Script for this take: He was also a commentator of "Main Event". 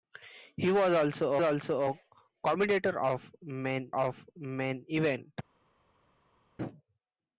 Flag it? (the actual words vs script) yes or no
yes